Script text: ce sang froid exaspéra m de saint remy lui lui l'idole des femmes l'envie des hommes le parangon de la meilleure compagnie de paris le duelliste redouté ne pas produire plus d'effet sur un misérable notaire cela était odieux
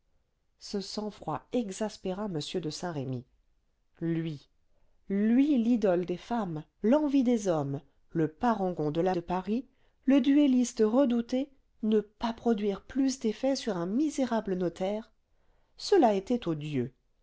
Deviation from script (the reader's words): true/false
true